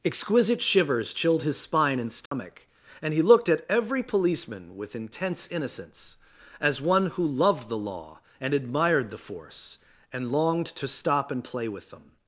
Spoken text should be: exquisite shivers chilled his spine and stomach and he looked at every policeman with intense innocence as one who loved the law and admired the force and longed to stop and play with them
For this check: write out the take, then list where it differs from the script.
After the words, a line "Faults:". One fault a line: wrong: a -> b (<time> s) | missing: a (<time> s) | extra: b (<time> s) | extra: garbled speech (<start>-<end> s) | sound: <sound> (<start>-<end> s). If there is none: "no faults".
exquisite shivers chilled his spine and stomach and he looked at every policeman with intense innocence as one who loved the law and admired the force and longed to stop and play with them
Faults:
sound: dropout (2.3-2.3 s)